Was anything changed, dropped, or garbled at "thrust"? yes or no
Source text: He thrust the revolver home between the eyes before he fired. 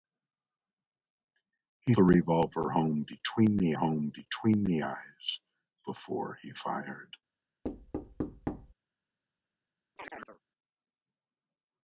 yes